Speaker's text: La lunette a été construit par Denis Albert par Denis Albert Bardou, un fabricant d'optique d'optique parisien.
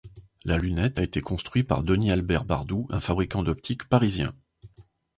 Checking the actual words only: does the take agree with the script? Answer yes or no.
no